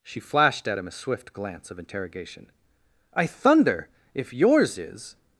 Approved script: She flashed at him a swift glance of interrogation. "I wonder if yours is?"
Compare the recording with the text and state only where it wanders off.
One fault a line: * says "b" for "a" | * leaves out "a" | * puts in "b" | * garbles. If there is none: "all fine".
* says "thunder" for "wonder"